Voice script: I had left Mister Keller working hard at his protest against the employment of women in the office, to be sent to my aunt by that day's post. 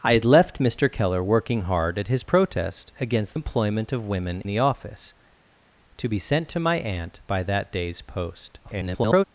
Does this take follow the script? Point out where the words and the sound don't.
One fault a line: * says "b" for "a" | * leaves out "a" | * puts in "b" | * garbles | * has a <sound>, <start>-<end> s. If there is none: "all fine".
* leaves out "the"
* leaves out "in"
* garbles